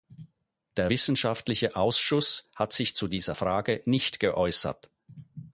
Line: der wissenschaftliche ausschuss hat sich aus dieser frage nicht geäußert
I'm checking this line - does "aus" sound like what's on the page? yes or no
no